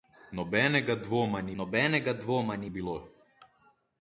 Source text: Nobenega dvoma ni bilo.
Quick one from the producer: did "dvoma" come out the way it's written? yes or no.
yes